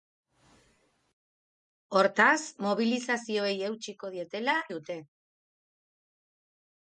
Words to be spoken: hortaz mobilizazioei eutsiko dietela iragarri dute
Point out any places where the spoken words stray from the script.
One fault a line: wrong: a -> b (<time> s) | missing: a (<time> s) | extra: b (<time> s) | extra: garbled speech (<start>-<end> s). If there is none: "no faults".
missing: iragarri (4.5 s)